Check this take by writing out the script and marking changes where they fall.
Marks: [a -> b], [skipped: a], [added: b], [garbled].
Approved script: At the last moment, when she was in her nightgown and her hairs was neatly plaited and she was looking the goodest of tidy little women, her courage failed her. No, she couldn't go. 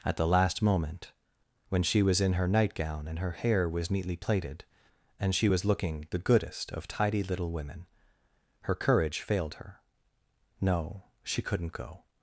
At the last moment, when she was in her nightgown and her [hairs -> hair] was neatly plaited and she was looking the goodest of tidy little women, her courage failed her. No, she couldn't go.